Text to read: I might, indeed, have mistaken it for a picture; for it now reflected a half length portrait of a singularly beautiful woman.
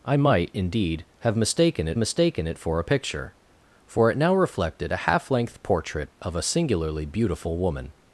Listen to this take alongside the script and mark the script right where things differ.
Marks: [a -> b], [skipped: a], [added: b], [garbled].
I might, indeed, have mistaken it [added: mistaken it] for a picture; for it now reflected a half length portrait of a singularly beautiful woman.